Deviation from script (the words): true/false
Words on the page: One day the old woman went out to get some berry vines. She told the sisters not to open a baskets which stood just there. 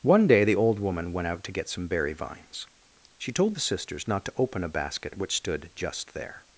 true